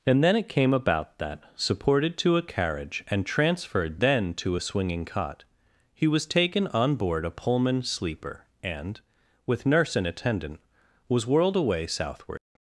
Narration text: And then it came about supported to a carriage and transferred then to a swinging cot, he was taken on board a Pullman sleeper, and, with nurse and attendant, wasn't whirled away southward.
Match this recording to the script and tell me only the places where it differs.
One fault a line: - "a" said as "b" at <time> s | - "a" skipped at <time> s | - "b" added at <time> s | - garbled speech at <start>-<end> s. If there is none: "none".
- "that" added at 1.2 s
- "wasn't" said as "was" at 11.1 s